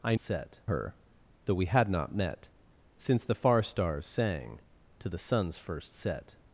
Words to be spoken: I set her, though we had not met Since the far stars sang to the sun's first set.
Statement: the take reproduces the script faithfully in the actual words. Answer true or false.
true